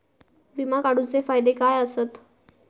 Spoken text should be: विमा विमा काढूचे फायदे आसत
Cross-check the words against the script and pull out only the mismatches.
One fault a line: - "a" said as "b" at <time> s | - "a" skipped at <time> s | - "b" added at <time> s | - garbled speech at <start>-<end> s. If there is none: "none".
- "विमा" skipped at 0.8 s
- "काय" added at 1.5 s